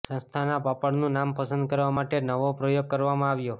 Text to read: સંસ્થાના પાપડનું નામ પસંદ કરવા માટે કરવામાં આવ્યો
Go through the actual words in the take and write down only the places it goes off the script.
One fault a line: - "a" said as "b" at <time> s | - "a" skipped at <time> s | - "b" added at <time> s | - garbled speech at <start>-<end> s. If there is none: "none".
- "નવો પ્રયોગ" added at 2.2 s